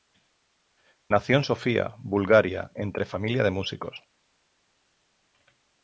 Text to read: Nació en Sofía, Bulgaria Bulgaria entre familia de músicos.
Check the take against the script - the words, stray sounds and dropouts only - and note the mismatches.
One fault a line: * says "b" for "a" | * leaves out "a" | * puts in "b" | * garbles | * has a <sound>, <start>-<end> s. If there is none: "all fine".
* leaves out "Bulgaria"